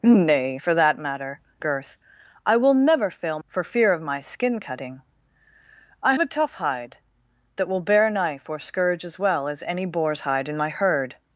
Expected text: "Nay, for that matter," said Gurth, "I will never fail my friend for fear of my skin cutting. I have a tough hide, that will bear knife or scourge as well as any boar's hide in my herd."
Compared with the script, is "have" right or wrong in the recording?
wrong